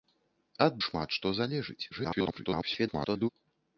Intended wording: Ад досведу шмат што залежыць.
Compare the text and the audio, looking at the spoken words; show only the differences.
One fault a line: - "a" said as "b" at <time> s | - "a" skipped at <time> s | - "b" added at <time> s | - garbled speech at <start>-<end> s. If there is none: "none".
- "досведу" skipped at 0.8 s
- garbled speech at 1.9-3.3 s